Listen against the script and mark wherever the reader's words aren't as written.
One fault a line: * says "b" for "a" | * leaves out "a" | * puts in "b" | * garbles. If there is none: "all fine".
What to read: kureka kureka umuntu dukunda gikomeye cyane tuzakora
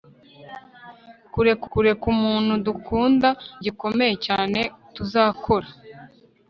all fine